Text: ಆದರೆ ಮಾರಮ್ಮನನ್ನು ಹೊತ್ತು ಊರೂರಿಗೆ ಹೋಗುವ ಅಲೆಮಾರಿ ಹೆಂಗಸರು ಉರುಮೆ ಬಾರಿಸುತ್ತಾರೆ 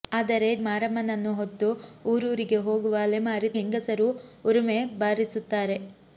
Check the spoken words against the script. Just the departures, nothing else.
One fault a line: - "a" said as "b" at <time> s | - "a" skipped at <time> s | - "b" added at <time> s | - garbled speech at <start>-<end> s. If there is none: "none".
none